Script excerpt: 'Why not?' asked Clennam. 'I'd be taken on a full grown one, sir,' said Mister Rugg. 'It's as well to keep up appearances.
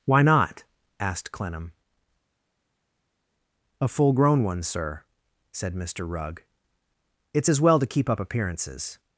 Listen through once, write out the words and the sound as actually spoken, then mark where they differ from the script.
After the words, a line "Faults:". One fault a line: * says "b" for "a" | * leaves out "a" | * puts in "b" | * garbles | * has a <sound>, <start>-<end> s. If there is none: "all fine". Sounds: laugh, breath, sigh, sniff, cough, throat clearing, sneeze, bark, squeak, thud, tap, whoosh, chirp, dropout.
'Why not?' asked Clennam. 'a full grown one, sir,' said Mister Rugg. 'It's as well to keep up appearances.
Faults:
* leaves out "I'd be taken on"